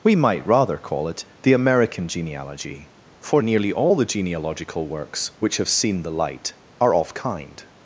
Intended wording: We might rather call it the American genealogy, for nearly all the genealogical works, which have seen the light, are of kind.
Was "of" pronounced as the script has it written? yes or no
yes